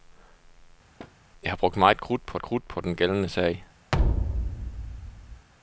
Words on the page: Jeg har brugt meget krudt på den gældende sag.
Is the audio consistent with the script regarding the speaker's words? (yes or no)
no